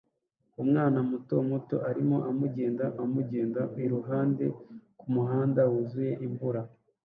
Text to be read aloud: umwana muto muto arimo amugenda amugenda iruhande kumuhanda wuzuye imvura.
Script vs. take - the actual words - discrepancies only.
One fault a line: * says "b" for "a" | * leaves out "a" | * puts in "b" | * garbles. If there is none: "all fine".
all fine